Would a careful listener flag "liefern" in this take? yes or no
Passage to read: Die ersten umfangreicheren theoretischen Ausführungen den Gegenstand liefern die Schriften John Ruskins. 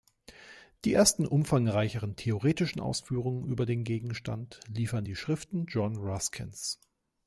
no